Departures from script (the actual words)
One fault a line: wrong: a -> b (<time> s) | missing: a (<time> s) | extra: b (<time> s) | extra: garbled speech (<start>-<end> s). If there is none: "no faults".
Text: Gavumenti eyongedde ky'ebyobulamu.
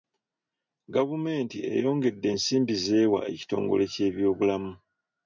extra: ensimbi z'ewa ekitongole (2.3 s)